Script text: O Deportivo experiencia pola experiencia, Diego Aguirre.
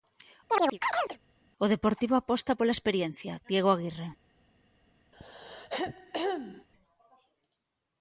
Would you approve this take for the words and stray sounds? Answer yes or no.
no